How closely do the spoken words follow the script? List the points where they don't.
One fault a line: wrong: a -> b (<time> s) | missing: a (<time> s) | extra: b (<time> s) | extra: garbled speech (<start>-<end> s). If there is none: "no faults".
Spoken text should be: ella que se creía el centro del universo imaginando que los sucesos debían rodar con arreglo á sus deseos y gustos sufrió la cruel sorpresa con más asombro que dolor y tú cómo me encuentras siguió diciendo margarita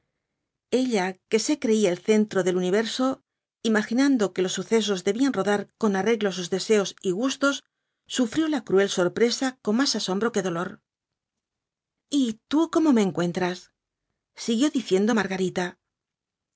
no faults